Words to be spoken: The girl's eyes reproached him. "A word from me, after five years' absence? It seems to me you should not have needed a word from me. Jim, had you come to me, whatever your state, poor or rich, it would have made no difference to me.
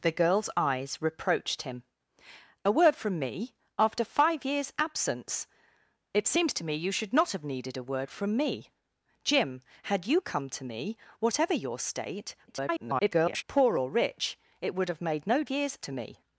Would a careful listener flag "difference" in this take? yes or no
yes